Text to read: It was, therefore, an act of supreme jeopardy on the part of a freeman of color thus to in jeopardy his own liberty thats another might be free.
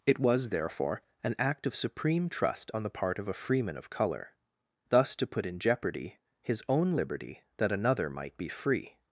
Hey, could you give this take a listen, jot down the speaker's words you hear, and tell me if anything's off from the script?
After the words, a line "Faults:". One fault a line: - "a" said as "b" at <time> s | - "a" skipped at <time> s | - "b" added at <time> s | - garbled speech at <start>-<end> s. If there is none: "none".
It was, therefore, an act of supreme trust on the part of a freeman of color thus to put in jeopardy his own liberty that another might be free.
Faults:
- "jeopardy" said as "trust" at 2.3 s
- "put" added at 5.2 s
- "thats" said as "that" at 7.6 s